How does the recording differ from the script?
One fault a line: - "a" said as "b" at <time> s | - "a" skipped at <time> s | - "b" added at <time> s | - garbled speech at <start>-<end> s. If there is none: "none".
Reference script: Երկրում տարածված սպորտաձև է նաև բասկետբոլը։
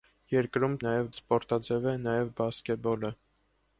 - "տարածված" said as "նաև" at 0.8 s